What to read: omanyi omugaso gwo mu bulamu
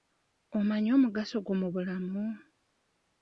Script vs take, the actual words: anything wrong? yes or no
no